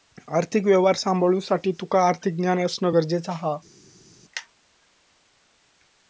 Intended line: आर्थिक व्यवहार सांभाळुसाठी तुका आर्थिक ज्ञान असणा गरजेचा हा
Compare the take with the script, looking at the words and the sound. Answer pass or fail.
pass